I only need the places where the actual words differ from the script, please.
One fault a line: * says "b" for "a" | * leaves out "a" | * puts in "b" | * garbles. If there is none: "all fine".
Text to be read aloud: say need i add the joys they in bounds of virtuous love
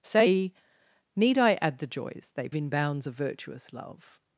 all fine